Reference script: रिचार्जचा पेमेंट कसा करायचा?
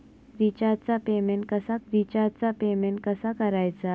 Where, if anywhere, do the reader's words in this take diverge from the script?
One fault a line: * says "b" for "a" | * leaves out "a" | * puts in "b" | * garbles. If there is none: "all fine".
* puts in "रिचार्जचा पेमेंट कसा"